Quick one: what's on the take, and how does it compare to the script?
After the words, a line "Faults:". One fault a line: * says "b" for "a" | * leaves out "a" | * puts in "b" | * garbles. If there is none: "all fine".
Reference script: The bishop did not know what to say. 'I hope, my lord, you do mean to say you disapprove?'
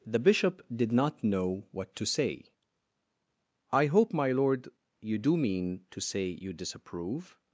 The bishop did not know what to say. 'I hope, my lord, you do mean to say you disapprove?'
Faults:
all fine